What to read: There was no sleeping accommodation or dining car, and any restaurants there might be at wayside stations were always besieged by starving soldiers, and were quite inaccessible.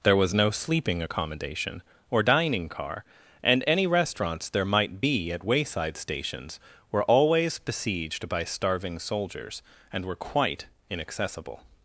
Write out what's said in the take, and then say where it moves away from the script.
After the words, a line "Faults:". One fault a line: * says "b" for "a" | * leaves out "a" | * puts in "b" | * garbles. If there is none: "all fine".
There was no sleeping accommodation or dining car, and any restaurants there might be at wayside stations were always besieged by starving soldiers, and were quite inaccessible.
Faults:
all fine